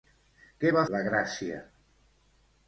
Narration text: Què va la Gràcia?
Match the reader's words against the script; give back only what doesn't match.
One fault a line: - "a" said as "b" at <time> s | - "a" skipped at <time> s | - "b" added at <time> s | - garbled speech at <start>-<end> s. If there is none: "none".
none